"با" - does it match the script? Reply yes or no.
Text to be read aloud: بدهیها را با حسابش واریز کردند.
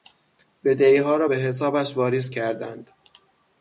no